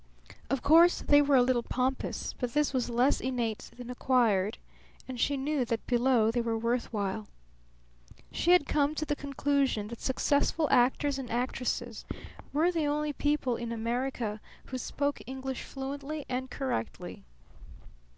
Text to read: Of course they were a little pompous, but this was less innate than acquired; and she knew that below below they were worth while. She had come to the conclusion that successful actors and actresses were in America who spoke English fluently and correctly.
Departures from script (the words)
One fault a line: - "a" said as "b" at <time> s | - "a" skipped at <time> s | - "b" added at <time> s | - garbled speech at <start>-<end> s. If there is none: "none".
- "below" skipped at 6.3 s
- "the only people" added at 12.7 s